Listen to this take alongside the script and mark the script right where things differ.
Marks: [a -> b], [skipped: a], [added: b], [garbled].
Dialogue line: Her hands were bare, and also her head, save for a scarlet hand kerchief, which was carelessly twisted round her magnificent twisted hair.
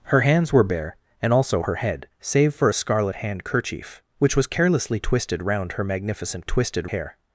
Her hands were bare, and also her head, save for a scarlet hand kerchief, which was carelessly twisted round her magnificent twisted hair.